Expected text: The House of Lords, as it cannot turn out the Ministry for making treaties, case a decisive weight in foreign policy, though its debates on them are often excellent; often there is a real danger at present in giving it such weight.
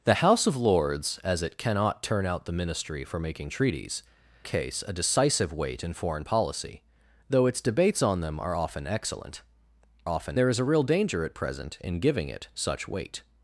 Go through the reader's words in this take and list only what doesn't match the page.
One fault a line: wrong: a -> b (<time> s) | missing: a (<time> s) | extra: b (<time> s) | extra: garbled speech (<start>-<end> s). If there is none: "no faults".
no faults